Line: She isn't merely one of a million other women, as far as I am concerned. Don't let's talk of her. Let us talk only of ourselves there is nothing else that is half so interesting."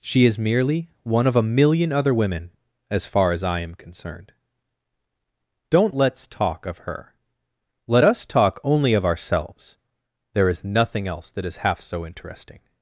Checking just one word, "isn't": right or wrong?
wrong